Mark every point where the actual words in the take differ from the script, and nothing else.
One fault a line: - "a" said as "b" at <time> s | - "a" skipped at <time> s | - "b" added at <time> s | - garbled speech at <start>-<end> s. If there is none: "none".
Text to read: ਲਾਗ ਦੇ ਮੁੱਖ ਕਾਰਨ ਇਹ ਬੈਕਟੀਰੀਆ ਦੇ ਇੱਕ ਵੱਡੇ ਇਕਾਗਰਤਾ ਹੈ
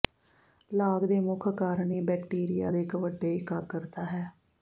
none